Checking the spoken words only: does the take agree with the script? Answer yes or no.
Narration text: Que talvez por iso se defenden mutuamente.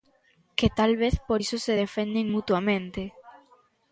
yes